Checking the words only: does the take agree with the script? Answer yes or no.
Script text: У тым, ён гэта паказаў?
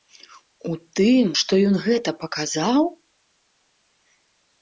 no